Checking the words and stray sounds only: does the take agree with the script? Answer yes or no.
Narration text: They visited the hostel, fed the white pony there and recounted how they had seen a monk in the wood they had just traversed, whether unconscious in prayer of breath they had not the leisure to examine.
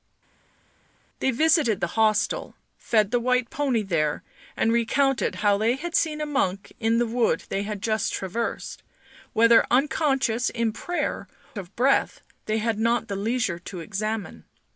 yes